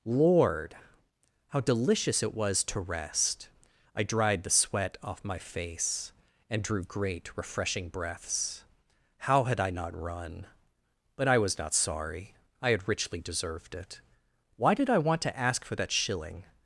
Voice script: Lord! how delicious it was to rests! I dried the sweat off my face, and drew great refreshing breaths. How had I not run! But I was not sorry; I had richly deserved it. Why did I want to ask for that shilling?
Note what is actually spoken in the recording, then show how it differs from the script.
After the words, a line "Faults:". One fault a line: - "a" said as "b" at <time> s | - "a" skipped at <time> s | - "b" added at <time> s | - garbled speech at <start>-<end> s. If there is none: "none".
Lord! how delicious it was to rest! I dried the sweat off my face, and drew great refreshing breaths. How had I not run! But I was not sorry; I had richly deserved it. Why did I want to ask for that shilling?
Faults:
- "rests" said as "rest" at 2.8 s